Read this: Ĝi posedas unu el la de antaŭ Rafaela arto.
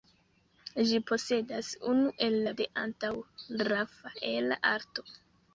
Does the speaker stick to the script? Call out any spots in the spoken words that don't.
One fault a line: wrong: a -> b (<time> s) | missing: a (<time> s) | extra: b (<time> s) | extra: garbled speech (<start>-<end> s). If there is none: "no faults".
no faults